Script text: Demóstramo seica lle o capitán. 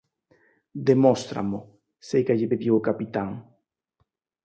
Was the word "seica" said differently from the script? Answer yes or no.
no